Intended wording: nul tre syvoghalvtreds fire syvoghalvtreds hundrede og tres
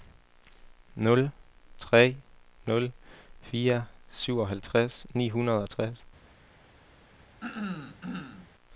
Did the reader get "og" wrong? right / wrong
right